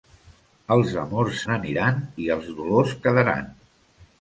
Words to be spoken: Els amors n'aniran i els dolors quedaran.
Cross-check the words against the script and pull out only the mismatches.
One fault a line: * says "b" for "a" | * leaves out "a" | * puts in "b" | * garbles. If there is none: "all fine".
all fine